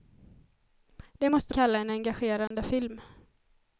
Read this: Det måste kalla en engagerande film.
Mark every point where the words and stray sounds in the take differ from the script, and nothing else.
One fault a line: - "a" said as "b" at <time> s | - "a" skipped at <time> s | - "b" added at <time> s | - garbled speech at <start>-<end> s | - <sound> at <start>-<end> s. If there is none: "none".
- dropout at 2.5-2.5 s